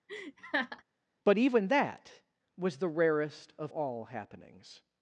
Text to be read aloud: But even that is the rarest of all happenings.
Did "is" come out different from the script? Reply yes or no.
yes